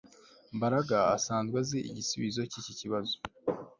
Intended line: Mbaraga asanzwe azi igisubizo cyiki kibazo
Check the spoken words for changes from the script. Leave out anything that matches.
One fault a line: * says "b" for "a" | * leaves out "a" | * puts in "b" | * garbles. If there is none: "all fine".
all fine